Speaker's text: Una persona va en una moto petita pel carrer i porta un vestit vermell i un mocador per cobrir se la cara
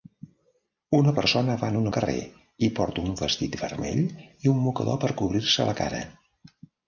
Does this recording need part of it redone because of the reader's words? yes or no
yes